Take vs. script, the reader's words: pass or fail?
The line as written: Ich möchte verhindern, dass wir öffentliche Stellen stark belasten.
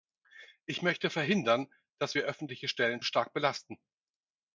pass